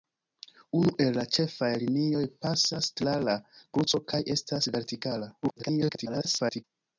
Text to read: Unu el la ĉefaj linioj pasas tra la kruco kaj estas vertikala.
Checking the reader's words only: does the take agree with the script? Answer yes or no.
no